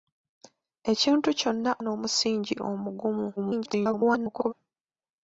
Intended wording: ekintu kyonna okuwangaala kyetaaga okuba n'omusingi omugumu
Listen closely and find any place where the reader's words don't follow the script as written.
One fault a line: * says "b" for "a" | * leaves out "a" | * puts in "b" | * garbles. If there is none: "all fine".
* leaves out "okuwangaala kyetaaga okuba"
* garbles